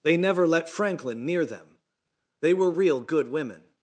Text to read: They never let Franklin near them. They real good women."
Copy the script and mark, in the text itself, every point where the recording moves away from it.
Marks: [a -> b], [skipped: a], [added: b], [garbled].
They never let Franklin near them. They [added: were] real good women."